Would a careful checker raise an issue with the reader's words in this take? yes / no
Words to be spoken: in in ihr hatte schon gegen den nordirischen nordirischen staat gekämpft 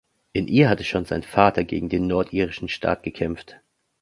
yes